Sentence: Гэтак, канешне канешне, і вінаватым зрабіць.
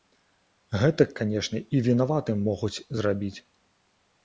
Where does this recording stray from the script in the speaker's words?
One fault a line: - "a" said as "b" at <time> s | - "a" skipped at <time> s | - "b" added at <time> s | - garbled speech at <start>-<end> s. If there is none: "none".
- "канешне" skipped at 1.6 s
- "могуць" added at 2.5 s